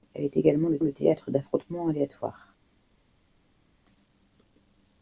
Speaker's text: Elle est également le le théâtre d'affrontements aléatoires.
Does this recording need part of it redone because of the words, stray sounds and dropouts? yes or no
no